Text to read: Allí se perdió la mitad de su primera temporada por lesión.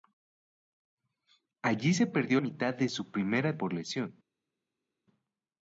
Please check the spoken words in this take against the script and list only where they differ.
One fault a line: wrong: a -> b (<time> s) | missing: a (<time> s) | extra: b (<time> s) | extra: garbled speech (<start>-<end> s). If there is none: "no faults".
missing: la (2.4 s)
missing: temporada (3.6 s)